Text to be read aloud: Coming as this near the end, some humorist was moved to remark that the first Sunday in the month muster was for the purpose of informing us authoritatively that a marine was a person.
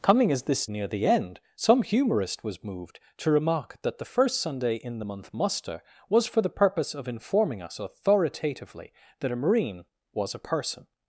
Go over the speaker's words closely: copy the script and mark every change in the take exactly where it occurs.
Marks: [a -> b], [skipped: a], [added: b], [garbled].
Coming as this near the end, some humorist was moved to remark that the first Sunday in the month muster was for the purpose of informing us authoritatively that a marine was a person.